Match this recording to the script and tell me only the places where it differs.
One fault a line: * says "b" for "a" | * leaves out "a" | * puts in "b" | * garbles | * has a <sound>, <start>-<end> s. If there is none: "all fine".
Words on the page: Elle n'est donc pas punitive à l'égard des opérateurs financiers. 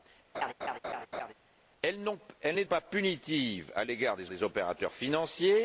* has a laugh, 0.3-1.3 s
* leaves out "donc"
* puts in "des"